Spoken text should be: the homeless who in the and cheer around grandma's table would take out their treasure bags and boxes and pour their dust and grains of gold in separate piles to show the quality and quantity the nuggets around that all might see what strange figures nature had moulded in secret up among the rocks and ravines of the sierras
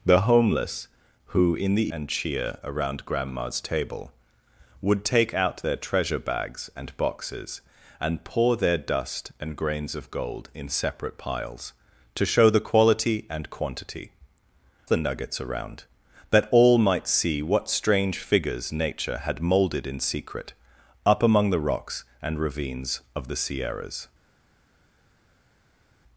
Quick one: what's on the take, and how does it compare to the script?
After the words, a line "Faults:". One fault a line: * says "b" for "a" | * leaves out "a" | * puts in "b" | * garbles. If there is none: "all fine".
the homeless who in the and cheer around grandma's table would take out their treasure bags and boxes and pour their dust and grains of gold in separate piles to show the quality and quantity the nuggets around that all might see what strange figures nature had moulded in secret up among the rocks and ravines of the sierras
Faults:
all fine